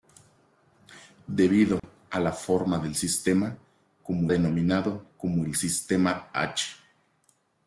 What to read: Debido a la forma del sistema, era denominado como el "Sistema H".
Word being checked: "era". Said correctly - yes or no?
no